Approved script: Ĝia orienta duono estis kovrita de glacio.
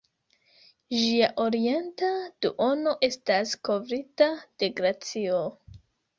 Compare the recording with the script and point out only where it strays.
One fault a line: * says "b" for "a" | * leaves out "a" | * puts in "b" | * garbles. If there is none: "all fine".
* says "estas" for "estis"